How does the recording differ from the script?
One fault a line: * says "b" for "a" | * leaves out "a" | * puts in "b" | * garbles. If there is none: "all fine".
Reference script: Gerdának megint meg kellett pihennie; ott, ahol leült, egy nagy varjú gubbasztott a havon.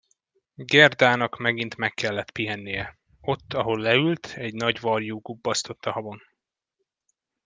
all fine